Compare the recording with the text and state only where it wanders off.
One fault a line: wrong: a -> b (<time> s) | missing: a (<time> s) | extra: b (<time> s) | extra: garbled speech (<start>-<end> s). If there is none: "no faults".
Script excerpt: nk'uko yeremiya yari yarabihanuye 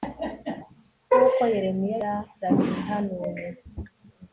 missing: yari (2.0 s)